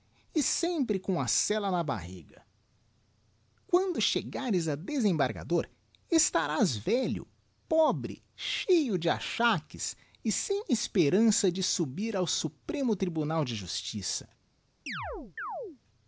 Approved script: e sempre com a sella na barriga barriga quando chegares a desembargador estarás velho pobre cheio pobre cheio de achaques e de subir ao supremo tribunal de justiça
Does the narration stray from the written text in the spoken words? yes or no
yes